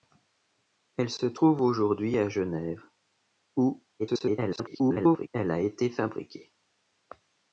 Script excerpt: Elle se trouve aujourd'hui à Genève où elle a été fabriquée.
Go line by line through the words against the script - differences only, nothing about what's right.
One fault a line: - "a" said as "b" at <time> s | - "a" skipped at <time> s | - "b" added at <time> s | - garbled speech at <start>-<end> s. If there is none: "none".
- garbled speech at 4.0-5.3 s